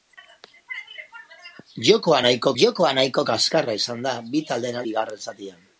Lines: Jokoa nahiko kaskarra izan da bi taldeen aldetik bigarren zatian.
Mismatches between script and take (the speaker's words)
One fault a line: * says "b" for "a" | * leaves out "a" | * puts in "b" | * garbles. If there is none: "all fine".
* puts in "jokoa nahiko"
* leaves out "aldetik"